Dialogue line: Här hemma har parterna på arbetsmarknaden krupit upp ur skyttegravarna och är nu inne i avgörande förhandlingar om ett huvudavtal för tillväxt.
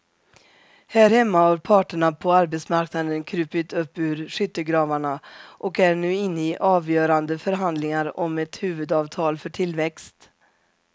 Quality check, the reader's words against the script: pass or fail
pass